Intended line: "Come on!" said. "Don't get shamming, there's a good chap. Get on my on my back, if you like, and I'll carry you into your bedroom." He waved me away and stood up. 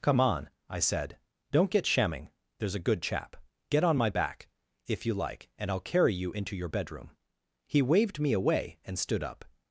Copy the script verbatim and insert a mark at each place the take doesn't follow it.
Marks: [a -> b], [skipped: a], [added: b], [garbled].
"Come on!" [added: I] said. "Don't get shamming, there's a good chap. Get on my [skipped: on my] back, if you like, and I'll carry you into your bedroom." He waved me away and stood up.